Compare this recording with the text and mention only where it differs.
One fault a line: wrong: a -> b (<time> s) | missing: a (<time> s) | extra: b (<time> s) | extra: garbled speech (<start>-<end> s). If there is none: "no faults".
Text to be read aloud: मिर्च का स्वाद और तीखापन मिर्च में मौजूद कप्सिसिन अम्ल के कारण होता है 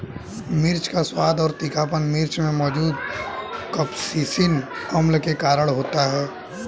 no faults